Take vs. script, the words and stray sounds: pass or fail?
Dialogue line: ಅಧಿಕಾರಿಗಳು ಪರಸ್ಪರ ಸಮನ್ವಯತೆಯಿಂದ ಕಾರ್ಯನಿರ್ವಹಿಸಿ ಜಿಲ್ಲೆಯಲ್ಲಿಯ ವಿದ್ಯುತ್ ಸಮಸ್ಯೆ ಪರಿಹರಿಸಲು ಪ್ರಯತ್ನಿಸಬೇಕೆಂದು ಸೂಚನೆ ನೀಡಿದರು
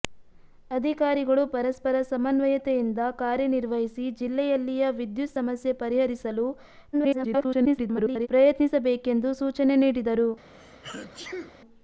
fail